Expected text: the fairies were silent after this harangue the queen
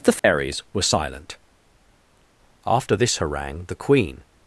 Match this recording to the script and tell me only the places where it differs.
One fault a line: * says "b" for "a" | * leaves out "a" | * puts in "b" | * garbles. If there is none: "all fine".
all fine